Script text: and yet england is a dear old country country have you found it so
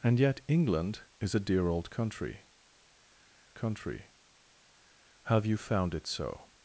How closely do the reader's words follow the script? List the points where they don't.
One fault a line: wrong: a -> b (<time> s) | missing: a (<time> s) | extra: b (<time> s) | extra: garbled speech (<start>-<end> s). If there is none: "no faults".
no faults